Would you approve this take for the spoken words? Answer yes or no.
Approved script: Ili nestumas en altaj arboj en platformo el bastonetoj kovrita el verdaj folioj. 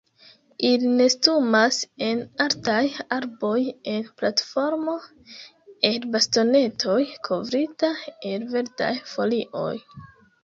yes